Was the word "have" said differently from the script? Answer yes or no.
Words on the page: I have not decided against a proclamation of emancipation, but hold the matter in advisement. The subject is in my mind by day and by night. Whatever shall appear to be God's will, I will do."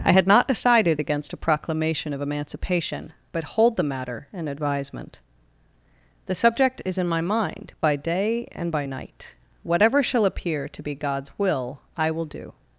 yes